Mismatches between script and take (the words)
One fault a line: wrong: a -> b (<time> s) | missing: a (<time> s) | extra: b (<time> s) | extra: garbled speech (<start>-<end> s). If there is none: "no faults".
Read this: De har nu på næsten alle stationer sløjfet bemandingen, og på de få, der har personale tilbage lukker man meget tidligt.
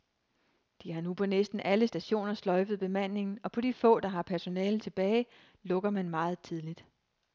no faults